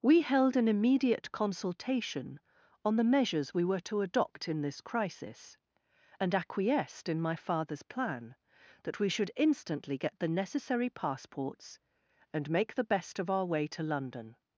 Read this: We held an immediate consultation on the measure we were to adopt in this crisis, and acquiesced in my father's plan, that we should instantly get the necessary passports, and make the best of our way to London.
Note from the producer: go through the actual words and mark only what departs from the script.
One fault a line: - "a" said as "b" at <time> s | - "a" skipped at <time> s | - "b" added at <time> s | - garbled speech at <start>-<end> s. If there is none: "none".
- "measure" said as "measures" at 3.0 s